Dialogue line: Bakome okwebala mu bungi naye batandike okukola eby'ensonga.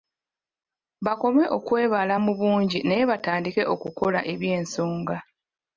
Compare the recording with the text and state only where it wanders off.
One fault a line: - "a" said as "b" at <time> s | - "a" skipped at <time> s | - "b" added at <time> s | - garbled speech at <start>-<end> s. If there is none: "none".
none